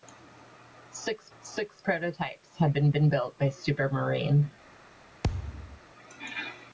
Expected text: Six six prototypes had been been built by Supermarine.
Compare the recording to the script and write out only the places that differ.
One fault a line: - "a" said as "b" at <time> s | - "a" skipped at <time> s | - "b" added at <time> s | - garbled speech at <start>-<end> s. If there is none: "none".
none